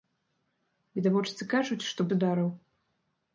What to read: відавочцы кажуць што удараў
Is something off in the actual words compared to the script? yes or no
no